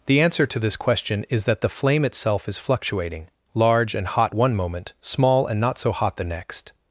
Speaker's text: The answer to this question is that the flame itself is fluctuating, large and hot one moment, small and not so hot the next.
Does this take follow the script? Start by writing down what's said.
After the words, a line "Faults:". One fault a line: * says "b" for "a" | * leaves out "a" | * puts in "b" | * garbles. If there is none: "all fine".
The answer to this question is that the flame itself is fluctuating, large and hot one moment, small and not so hot the next.
Faults:
all fine